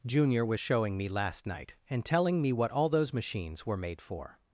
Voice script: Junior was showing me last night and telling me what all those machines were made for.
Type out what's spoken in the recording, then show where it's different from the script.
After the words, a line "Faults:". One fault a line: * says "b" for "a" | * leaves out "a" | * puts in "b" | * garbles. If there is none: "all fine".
Junior was showing me last night and telling me what all those machines were made for.
Faults:
all fine